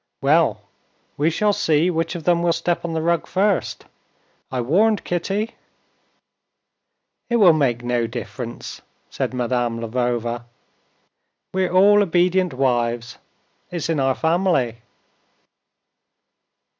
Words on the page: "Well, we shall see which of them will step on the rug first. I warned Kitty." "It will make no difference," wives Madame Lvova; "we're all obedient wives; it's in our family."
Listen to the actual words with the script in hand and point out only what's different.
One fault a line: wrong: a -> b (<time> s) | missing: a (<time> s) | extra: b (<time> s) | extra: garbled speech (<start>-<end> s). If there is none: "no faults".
wrong: wives -> said (9.1 s)